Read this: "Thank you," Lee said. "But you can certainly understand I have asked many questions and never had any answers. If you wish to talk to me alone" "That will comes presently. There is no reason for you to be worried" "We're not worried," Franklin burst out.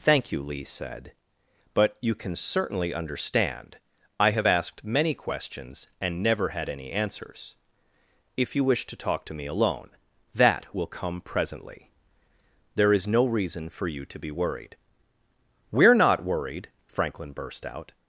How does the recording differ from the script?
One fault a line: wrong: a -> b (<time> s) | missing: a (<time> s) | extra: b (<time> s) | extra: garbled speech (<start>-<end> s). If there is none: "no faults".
wrong: comes -> come (10.9 s)